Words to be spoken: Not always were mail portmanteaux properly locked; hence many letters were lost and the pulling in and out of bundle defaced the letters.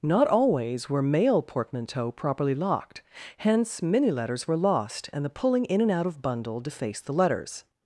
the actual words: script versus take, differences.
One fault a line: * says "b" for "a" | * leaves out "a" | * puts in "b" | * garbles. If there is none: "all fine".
all fine